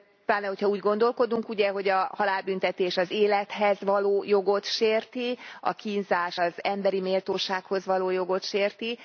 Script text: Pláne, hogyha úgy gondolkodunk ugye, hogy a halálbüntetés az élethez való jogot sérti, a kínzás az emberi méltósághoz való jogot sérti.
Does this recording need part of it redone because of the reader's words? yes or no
no